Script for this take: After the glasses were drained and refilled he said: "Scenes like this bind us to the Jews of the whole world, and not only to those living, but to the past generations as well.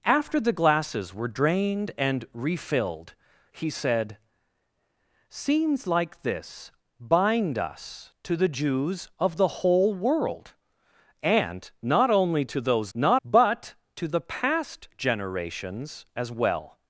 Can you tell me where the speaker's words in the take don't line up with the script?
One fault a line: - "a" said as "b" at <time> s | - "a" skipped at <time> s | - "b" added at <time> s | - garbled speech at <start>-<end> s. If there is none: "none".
- "living" said as "not" at 12.9 s